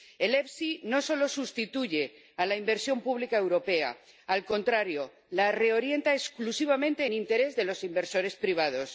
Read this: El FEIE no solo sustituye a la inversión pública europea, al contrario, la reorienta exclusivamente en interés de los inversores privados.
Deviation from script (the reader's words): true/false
false